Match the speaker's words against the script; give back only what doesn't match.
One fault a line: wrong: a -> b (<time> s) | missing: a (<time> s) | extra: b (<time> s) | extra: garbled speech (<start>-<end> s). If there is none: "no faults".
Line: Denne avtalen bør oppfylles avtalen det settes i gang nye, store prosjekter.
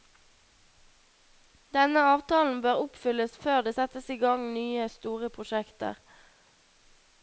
wrong: avtalen -> før (3.5 s)